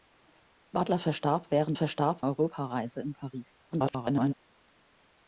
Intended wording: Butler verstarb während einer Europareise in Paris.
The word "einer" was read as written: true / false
false